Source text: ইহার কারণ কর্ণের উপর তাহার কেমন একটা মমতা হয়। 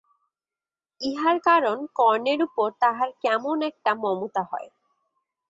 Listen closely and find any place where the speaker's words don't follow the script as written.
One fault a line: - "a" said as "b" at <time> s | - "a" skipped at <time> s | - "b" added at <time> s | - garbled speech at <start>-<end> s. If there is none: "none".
none